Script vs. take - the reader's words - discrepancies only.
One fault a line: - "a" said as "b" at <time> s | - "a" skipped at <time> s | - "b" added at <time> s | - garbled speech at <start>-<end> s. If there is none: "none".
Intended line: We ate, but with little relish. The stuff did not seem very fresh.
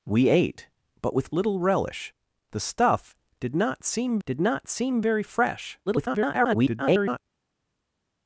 - "did not seem" added at 4.2 s
- garbled speech at 5.9-7.2 s